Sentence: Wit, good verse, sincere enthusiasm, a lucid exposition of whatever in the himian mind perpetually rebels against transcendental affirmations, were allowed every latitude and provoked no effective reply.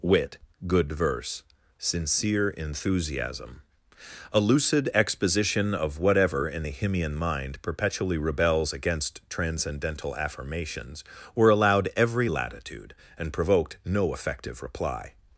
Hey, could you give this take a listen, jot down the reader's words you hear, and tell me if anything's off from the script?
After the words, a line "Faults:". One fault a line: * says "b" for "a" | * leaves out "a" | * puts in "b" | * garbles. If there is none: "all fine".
Wit, good verse, sincere enthusiasm, a lucid exposition of whatever in the himian mind perpetually rebels against transcendental affirmations, were allowed every latitude and provoked no effective reply.
Faults:
all fine